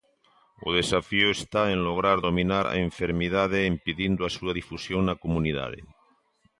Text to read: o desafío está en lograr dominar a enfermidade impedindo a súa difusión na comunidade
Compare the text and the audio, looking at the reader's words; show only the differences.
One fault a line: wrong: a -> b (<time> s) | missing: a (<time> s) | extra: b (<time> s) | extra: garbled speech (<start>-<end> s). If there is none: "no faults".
no faults